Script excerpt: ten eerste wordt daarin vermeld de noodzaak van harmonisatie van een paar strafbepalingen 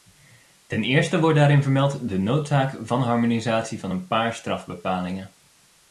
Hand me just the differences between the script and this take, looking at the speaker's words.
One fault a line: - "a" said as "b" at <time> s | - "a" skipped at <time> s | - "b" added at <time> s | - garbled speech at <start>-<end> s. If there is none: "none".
none